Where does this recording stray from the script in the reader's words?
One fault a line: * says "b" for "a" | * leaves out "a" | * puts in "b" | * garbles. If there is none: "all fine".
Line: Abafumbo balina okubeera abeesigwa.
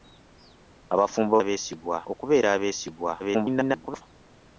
* says "abeesigwa" for "balina"
* garbles